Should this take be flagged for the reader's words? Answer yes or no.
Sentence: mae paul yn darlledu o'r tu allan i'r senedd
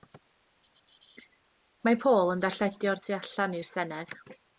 no